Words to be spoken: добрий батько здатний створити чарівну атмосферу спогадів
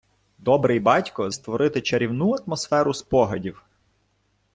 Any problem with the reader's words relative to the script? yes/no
yes